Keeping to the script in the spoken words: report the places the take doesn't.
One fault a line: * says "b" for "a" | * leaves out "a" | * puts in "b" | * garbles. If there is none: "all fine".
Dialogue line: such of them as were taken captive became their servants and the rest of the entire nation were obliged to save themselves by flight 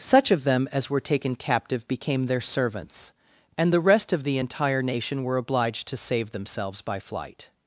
all fine